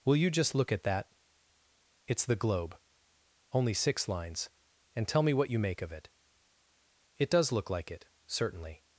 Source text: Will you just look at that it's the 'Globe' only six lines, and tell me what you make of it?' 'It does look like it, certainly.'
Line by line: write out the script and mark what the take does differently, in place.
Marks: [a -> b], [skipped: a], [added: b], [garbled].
Will you just look at that it's the 'Globe' only six lines, and tell me what you make of it?' 'It does look like it, certainly.'